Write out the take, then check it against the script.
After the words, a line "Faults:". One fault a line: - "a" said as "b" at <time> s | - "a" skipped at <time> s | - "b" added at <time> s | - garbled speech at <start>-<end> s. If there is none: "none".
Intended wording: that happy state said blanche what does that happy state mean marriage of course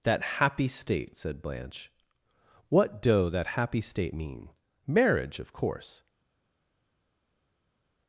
that happy state said blanche what doe that happy state mean marriage of course
Faults:
- "does" said as "doe" at 3.0 s